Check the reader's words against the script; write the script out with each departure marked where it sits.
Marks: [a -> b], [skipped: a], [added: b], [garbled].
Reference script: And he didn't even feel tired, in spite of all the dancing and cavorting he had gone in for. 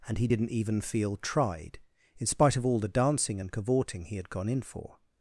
And he didn't even feel [tired, -> tried] in spite of all the dancing and cavorting he had gone in for.